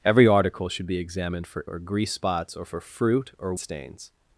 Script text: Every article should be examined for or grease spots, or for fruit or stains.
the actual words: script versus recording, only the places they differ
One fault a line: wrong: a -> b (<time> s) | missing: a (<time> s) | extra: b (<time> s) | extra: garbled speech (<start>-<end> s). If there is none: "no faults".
no faults